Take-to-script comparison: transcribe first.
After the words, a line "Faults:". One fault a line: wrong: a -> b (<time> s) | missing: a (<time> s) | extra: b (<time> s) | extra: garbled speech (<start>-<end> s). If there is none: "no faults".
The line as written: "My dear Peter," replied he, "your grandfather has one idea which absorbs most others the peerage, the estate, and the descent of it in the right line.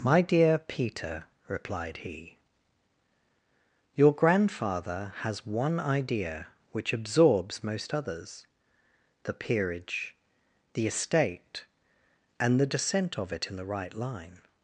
"My dear Peter," replied he, "your grandfather has one idea which absorbs most others the peerage, the estate, and the descent of it in the right line.
Faults:
no faults